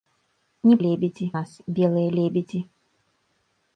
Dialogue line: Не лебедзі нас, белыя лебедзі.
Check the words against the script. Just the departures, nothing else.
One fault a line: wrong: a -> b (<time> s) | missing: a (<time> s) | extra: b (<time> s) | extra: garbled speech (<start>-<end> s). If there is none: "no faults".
no faults